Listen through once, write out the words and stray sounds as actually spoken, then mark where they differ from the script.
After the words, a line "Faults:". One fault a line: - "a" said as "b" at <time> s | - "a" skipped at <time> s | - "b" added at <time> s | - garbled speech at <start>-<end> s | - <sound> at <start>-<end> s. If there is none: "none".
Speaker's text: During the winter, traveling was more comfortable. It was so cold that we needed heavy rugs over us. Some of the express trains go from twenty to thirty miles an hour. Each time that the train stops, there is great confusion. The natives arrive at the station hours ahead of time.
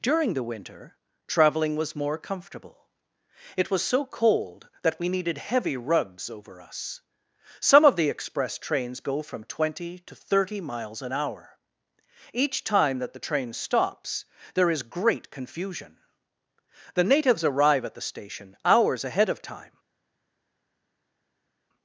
During the winter, traveling was more comfortable. It was so cold that we needed heavy rugs over us. Some of the express trains go from twenty to thirty miles an hour. Each time that the train stops, there is great confusion. The natives arrive at the station hours ahead of time.
Faults:
none